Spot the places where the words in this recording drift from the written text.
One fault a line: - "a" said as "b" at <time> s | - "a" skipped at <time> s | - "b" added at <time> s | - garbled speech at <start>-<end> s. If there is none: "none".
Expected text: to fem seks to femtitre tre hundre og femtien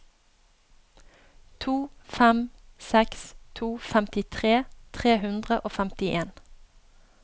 none